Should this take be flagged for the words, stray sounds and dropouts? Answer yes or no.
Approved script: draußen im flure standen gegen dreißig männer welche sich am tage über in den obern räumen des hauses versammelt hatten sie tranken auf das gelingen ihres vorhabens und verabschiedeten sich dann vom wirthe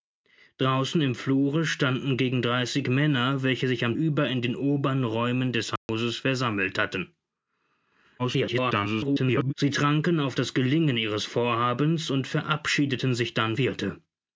yes